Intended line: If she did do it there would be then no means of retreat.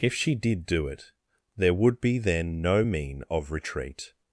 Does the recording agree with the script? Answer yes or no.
no